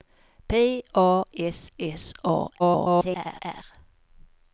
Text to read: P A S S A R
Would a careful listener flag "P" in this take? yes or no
no